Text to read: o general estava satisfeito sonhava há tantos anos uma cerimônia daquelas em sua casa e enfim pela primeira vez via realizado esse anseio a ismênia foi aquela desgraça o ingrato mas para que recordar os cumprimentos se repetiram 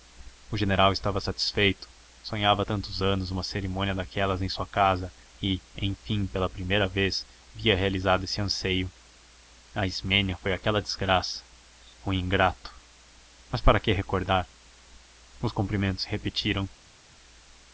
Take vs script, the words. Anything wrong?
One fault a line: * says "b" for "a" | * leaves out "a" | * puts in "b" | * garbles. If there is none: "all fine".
all fine